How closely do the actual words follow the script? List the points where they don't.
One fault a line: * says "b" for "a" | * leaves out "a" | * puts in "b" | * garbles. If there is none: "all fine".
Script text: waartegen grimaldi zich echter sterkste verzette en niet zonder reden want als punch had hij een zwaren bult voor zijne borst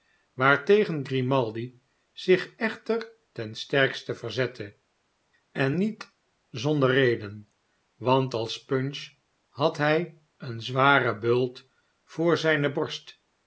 * puts in "ten"